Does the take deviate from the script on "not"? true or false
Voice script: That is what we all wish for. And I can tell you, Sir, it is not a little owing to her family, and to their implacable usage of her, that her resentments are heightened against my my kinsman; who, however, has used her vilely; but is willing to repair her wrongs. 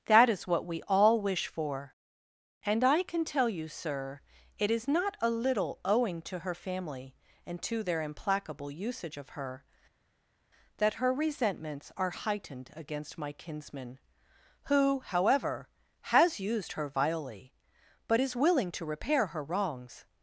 false